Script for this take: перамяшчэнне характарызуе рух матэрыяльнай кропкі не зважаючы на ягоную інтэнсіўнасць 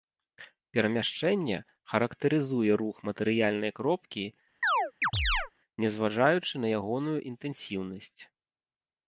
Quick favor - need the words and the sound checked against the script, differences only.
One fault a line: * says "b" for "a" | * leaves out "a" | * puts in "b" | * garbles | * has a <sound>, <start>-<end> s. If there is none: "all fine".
* has a chirp, 4.6-5.5 s